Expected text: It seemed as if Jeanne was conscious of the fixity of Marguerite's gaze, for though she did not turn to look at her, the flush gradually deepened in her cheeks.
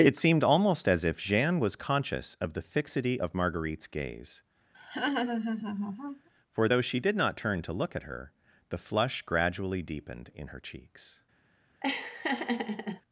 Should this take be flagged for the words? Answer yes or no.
yes